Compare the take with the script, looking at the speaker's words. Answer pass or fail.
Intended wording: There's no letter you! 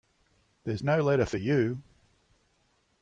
fail